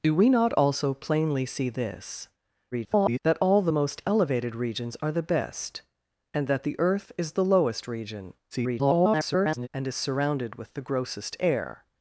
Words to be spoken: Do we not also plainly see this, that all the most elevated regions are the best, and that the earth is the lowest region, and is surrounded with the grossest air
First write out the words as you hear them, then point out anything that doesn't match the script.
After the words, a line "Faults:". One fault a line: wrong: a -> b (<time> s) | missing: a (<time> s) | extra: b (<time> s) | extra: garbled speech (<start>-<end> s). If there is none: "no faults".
Do we not also plainly see this, [garbled] that all the most elevated regions are the best, and that the earth is the lowest region, [garbled] and is surrounded with the grossest air
Faults:
extra: garbled speech (2.7-3.2 s)
extra: garbled speech (8.5-9.7 s)